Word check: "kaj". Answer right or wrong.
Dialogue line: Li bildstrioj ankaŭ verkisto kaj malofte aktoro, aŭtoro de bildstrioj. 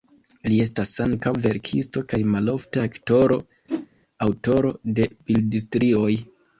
right